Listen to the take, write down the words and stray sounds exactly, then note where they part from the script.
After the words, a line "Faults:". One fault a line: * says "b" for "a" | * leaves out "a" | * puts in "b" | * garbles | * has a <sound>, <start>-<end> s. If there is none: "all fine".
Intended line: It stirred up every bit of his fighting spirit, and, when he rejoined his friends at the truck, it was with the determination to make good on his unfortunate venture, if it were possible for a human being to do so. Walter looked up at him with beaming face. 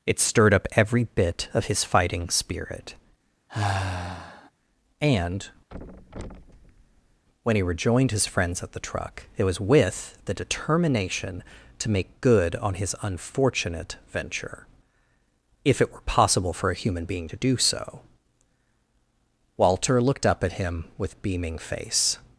It stirred up every bit of his fighting spirit, and, when he rejoined his friends at the truck, it was with the determination to make good on his unfortunate venture, if it were possible for a human being to do so. Walter looked up at him with beaming face.
Faults:
* has a sigh, 3.5-4.5 s
* has a thud, 5.7-7.2 s